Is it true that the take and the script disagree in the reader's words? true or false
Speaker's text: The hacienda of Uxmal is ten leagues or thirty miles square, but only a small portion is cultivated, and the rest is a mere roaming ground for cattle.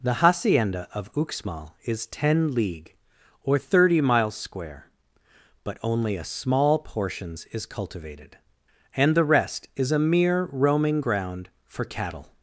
true